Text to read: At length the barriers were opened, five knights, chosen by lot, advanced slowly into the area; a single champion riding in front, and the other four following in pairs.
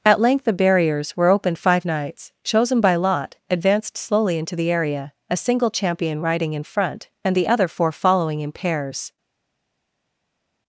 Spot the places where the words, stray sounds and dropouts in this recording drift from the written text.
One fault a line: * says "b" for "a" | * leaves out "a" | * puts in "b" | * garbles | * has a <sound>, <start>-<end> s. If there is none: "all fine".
all fine